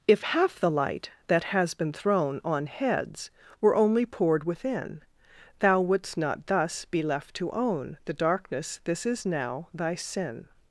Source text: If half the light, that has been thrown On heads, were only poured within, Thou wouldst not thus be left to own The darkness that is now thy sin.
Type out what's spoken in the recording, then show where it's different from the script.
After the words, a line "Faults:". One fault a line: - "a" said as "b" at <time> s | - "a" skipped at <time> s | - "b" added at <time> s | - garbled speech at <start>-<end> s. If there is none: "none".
If half the light, that has been thrown On heads, were only poured within, Thou wouldst not thus be left to own The darkness this is now thy sin.
Faults:
- "that" said as "this" at 8.8 s